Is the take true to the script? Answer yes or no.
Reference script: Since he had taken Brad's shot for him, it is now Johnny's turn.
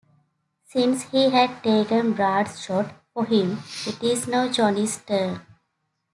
yes